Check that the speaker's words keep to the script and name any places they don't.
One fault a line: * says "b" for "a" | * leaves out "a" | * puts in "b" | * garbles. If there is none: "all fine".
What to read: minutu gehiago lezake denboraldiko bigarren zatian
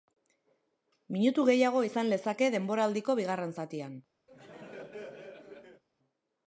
* puts in "izan"